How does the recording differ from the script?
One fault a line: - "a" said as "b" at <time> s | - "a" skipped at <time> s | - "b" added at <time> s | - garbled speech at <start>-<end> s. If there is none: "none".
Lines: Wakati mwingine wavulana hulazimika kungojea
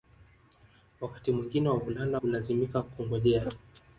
none